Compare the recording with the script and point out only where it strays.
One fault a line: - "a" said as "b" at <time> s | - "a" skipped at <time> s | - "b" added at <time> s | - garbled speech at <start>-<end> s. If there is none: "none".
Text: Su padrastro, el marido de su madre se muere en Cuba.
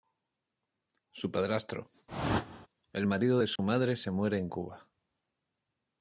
none